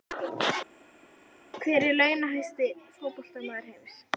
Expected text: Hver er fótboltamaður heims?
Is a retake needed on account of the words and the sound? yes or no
yes